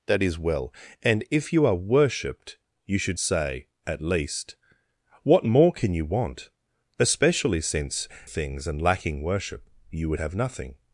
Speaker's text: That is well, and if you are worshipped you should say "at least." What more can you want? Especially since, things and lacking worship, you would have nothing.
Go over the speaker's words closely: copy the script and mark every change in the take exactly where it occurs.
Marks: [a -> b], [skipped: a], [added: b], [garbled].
That is well, and if you are worshipped you should say "at least." What more can you want? Especially since, things and lacking worship, you would have nothing.